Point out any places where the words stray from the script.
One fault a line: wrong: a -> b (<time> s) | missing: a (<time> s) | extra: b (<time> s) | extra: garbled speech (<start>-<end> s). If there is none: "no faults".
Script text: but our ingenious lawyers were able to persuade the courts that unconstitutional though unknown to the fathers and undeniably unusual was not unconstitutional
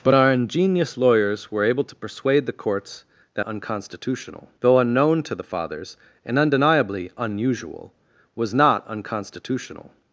no faults